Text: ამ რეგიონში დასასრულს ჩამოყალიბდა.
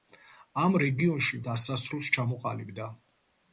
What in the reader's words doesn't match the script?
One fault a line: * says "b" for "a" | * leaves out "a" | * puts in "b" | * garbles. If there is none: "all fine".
all fine